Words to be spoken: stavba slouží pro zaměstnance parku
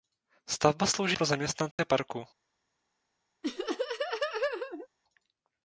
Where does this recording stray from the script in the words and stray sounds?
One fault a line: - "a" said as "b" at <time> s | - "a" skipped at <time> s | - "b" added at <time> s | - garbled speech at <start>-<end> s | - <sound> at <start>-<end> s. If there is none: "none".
- dropout at 1.7-1.8 s
- laugh at 3.4-4.9 s